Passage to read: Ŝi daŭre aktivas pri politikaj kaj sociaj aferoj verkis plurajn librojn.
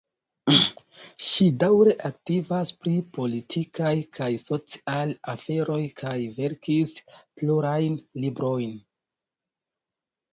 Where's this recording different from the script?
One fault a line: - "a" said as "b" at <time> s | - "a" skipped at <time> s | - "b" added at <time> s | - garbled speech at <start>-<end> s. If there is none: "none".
- "kaj" added at 6.0 s